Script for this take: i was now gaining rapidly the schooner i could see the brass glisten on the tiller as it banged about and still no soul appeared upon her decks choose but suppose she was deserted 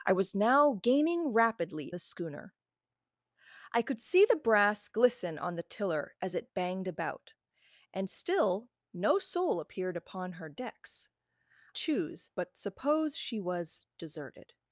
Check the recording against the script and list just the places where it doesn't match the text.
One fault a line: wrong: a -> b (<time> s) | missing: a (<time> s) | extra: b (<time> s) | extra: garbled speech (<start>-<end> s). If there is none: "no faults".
no faults